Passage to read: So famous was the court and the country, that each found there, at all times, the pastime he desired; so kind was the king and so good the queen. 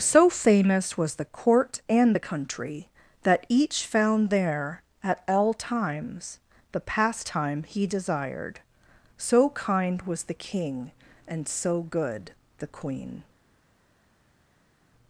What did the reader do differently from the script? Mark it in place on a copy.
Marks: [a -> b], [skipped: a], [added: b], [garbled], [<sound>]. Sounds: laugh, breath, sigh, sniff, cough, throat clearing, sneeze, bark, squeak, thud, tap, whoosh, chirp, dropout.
So famous was the court and the country, that each found there, at all times, the pastime he desired; so kind was the king and so good the queen.